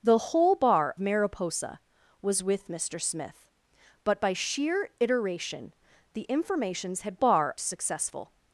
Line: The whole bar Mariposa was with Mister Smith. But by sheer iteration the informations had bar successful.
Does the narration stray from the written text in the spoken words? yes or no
no